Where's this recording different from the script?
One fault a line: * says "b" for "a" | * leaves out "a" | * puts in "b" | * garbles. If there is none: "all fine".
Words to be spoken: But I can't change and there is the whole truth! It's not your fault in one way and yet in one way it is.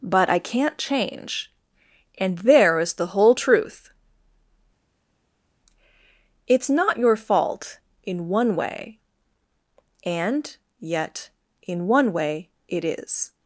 all fine